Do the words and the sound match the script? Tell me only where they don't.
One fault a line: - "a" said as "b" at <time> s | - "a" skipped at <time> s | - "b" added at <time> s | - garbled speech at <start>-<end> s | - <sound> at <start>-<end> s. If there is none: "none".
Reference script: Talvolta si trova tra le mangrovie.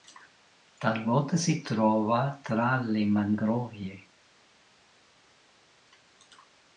none